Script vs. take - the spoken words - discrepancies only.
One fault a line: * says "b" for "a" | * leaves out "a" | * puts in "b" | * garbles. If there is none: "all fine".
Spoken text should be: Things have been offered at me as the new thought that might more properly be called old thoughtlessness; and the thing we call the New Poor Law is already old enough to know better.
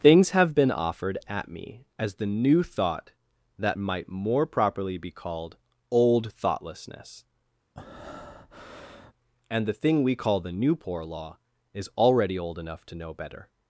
all fine